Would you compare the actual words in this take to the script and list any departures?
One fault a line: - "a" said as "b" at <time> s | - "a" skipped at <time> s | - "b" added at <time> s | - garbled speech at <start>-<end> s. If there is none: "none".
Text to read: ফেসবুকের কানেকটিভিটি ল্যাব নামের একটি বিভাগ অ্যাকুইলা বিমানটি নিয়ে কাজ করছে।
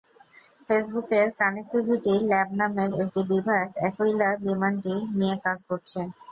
none